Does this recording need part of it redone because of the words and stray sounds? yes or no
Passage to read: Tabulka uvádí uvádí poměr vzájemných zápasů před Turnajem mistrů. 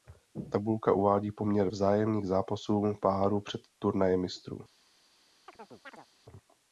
yes